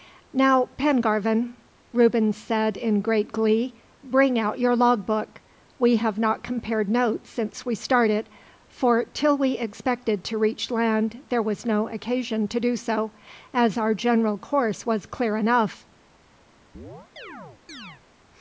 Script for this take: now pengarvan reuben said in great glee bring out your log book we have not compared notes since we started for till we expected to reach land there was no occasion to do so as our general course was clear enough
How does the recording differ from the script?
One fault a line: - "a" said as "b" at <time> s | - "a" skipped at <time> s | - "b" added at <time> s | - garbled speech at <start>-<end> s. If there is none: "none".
none